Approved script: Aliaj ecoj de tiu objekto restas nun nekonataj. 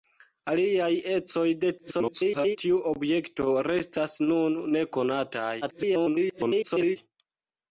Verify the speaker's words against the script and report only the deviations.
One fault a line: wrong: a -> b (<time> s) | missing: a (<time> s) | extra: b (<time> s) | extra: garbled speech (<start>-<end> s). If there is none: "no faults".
extra: garbled speech (1.8-2.6 s)
extra: garbled speech (5.6-7.0 s)